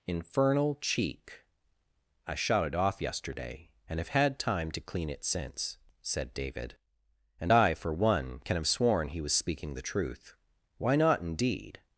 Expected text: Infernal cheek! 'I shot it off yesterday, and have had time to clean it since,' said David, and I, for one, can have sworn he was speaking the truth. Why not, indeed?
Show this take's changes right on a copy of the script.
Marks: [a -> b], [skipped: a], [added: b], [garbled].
Infernal cheek! 'I shot it off yesterday, and have had time to clean it since,' said David, and I, for one, can have sworn he was speaking the truth. Why not, indeed?